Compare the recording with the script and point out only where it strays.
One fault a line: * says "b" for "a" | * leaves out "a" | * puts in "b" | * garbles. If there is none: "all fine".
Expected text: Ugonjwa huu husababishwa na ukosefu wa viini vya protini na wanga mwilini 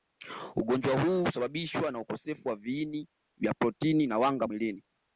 all fine